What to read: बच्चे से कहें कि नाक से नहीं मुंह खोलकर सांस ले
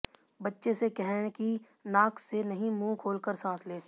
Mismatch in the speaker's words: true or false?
false